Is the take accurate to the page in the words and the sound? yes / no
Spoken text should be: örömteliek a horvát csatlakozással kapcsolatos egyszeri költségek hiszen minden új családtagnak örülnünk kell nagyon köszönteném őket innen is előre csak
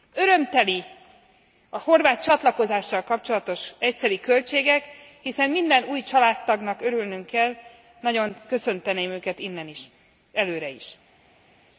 no